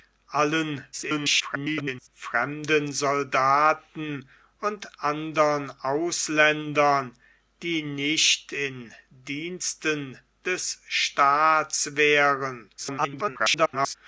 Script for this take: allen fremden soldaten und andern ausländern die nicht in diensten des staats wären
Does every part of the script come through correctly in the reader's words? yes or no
no